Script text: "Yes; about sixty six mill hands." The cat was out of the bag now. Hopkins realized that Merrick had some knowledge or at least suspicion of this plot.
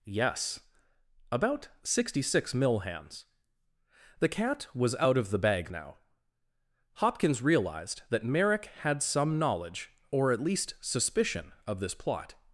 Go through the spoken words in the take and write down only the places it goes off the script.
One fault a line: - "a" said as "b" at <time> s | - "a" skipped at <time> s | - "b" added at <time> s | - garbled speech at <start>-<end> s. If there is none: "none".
none